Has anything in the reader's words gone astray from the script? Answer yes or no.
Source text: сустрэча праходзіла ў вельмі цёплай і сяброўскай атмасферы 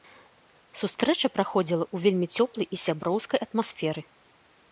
no